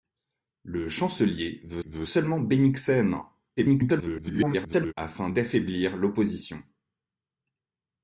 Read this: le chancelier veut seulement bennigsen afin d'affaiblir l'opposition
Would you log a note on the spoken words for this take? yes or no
yes